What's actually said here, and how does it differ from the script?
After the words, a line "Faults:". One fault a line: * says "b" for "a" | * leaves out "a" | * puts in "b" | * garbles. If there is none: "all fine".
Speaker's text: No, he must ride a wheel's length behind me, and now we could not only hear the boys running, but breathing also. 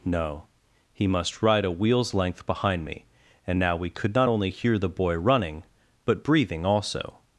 No, he must ride a wheel's length behind me, and now we could not only hear the boy running, but breathing also.
Faults:
* says "boy" for "boys"